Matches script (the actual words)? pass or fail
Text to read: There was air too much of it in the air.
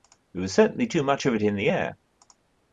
fail